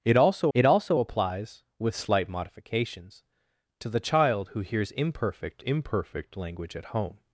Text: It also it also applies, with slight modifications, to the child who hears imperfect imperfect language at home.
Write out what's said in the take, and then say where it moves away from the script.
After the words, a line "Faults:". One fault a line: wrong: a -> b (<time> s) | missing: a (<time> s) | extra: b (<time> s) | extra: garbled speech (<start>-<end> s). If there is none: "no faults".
It also it also applies, with slight modifications, to the child who hears imperfect imperfect language at home.
Faults:
no faults